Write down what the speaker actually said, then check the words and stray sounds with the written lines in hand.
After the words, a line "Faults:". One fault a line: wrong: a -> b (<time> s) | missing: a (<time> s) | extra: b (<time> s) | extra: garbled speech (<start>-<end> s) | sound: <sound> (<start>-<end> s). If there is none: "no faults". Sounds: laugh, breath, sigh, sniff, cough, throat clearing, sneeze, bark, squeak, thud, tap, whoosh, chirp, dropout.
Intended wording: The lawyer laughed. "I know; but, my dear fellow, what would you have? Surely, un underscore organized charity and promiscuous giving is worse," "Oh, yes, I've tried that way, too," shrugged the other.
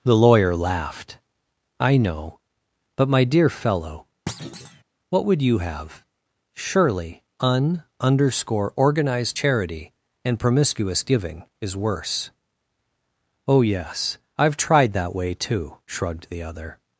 The lawyer laughed. "I know; but, my dear fellow, what would you have? Surely, un underscore organized charity and promiscuous giving is worse," "Oh, yes, I've tried that way, too," shrugged the other.
Faults:
sound: thud (4.3-4.8 s)